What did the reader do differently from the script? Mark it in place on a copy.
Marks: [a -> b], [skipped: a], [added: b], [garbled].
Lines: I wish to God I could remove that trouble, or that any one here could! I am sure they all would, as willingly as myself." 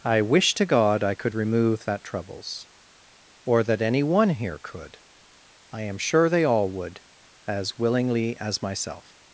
I wish to God I could remove that [trouble, -> troubles] or that any one here could! I am sure they all would, as willingly as myself."